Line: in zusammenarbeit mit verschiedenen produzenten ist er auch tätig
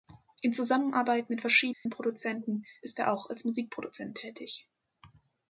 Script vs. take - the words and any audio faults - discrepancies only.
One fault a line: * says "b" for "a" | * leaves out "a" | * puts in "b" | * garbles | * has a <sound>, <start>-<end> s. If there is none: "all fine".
* has a dropout, 1.7-1.9 s
* puts in "als musikproduzent"